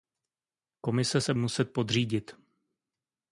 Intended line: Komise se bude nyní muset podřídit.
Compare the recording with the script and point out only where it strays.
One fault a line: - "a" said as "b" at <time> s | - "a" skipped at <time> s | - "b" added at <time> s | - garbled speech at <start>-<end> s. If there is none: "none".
- "bude nyní" skipped at 1.3 s